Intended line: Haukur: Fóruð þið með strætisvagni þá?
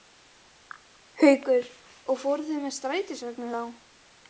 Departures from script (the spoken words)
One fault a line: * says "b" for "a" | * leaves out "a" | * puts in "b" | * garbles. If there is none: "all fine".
* puts in "Og"